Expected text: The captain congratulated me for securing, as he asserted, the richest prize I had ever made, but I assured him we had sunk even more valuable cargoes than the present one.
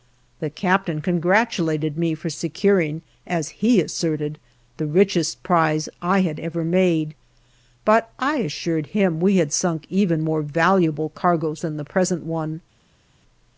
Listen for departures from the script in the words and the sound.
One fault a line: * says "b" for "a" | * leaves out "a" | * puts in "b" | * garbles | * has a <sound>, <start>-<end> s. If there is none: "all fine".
all fine